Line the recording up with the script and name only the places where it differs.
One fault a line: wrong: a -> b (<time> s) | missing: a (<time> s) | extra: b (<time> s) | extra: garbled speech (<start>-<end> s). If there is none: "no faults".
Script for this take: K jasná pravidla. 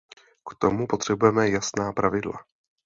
extra: tomu potřebujeme (0.6 s)